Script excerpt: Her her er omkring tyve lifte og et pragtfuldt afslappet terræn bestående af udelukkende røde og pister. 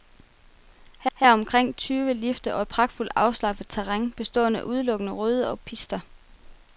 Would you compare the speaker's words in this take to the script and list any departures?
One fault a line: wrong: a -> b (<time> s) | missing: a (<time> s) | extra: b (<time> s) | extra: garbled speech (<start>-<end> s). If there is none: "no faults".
no faults